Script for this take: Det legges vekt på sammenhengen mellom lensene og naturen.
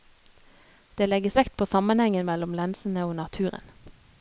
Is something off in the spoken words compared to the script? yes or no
no